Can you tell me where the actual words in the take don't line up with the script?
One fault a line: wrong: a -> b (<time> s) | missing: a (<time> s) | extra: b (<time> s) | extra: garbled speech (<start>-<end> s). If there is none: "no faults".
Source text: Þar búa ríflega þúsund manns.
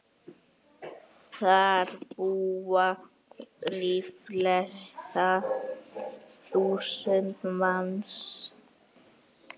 no faults